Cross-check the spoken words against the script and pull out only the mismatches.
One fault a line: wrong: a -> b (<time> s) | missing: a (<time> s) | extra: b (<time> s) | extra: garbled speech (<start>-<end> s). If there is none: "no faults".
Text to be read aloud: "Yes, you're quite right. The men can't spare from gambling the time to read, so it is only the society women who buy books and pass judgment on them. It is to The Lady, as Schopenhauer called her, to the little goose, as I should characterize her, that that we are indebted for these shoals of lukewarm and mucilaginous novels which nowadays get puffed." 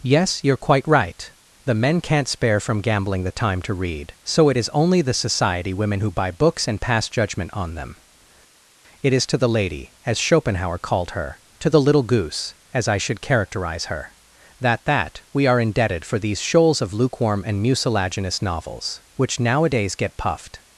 no faults